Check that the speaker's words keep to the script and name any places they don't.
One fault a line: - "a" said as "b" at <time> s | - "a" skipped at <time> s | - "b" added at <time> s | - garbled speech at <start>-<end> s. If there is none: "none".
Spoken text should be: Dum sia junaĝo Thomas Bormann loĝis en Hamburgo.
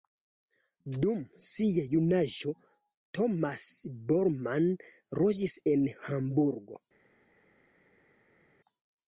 none